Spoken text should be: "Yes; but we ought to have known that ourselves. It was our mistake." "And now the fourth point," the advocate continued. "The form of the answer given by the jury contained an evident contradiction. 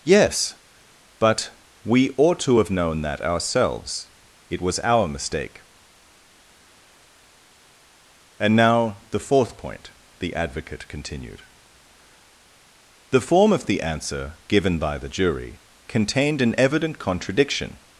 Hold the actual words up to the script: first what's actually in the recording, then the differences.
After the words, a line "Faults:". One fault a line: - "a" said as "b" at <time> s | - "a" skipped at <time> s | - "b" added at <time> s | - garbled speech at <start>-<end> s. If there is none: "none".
"Yes; but we ought to have known that ourselves. It was our mistake." "And now the fourth point," the advocate continued. "The form of the answer given by the jury contained an evident contradiction.
Faults:
none